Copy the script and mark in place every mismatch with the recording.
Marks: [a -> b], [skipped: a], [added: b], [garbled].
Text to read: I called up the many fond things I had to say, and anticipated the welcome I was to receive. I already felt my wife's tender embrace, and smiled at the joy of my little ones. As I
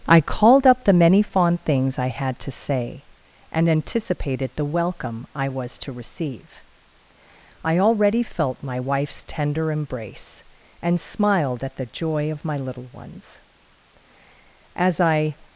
I called up the many fond things I had to say, and anticipated the welcome I was to receive. I already felt my wife's tender embrace, and smiled at the joy of my little ones. As I